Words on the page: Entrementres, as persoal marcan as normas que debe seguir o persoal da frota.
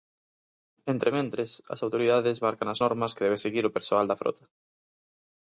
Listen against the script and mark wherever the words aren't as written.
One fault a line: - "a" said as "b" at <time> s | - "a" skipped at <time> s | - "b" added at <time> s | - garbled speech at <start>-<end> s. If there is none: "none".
- "persoal" said as "autoridades" at 1.9 s